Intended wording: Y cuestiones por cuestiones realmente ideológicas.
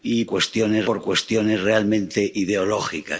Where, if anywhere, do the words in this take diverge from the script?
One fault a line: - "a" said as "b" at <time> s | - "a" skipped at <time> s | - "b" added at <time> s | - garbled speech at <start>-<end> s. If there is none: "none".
none